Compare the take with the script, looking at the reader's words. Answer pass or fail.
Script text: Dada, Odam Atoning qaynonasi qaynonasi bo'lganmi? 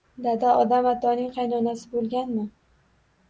fail